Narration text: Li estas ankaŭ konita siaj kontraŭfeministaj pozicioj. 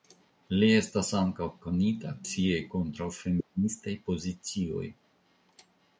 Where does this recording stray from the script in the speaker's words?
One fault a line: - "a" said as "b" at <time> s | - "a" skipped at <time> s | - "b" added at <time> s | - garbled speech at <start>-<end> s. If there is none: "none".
none